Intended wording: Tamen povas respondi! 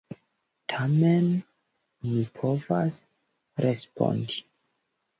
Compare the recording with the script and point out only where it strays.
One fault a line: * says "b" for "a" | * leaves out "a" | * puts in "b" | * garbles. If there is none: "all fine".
* puts in "mi"